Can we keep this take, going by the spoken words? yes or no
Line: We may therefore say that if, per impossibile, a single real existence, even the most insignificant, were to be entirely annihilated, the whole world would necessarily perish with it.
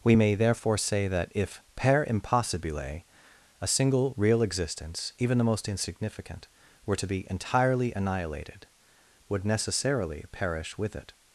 no